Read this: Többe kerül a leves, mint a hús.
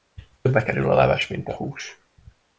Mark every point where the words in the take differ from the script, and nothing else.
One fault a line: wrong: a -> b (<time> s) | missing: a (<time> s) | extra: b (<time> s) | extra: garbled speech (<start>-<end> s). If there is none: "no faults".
no faults